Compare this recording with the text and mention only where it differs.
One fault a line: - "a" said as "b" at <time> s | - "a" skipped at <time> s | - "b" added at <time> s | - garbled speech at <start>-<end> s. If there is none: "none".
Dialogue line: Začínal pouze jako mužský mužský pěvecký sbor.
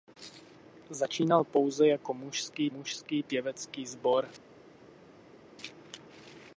none